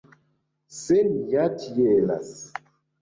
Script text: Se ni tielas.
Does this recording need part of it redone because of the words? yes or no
yes